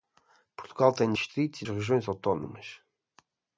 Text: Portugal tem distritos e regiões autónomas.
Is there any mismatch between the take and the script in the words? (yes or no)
no